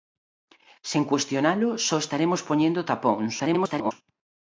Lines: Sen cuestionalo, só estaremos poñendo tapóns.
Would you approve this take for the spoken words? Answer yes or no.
no